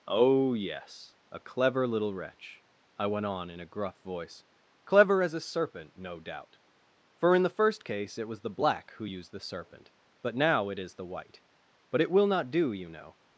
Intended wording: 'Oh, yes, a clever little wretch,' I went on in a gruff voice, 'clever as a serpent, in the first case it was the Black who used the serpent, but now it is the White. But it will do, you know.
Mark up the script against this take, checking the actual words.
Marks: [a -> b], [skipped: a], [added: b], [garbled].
'Oh, yes, a clever little wretch,' I went on in a gruff voice, 'clever as a serpent, [added: no doubt for] in the first case it was the Black who used the serpent, but now it is the White. But it will [added: not] do, you know.